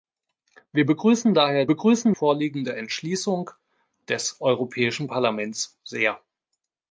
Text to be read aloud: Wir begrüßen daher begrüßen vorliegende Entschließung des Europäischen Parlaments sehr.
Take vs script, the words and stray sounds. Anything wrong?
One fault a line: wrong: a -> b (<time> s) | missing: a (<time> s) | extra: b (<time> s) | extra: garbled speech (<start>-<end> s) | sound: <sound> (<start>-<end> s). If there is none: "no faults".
no faults